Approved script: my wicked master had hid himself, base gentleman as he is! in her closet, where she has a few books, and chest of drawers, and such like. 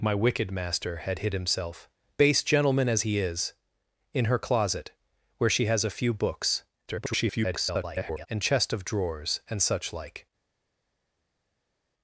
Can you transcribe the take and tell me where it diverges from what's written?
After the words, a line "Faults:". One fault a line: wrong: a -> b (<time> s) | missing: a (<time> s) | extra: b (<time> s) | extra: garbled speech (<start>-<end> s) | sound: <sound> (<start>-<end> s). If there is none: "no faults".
my wicked master had hid himself, base gentleman as he is! in her closet, where she has a few books, [garbled] and chest of drawers, and such like.
Faults:
extra: garbled speech (6.9-8.3 s)